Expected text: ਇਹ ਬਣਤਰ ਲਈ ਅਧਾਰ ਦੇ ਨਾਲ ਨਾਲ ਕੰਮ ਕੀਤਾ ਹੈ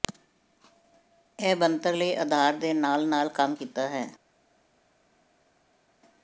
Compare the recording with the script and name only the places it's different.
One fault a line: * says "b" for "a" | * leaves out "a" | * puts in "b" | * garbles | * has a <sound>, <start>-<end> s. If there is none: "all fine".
all fine